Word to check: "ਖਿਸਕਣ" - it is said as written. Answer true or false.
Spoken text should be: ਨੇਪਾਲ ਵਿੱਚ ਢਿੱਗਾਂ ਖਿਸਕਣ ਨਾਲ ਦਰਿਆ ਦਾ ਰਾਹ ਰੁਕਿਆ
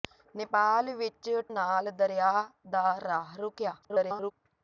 false